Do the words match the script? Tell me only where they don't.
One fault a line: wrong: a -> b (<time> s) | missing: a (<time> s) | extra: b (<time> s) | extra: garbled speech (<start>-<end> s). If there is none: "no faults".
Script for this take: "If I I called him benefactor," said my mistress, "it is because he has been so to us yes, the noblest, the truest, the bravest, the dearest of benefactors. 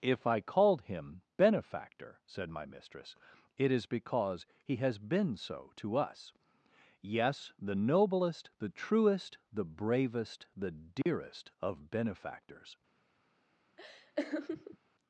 missing: I (0.4 s)